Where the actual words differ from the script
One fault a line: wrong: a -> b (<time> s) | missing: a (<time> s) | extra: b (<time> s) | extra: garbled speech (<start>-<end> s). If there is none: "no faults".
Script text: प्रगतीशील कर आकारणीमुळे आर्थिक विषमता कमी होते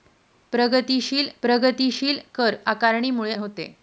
extra: प्रगतीशील (1.4 s)
missing: आर्थिक विषमता कमी (3.3 s)